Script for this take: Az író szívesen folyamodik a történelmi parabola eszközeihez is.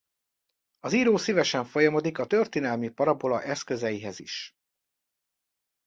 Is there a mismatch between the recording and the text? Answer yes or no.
no